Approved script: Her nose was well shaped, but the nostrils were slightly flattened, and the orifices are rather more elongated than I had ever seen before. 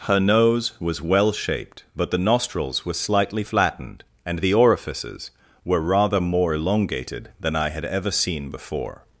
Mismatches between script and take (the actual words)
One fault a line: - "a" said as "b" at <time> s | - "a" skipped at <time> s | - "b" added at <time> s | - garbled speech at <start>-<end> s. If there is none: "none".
- "are" said as "were" at 5.6 s